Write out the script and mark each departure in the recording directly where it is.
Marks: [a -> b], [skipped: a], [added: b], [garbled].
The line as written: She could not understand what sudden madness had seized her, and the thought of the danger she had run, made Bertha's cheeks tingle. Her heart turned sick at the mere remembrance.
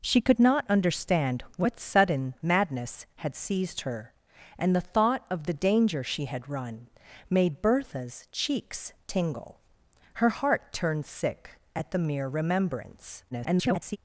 She could not understand what sudden madness had seized her, and the thought of the danger she had run, made Bertha's cheeks tingle. Her heart turned sick at the mere remembrance. [garbled]